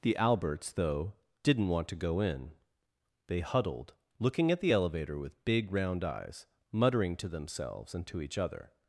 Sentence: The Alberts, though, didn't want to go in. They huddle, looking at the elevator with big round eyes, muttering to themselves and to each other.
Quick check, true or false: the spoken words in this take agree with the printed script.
false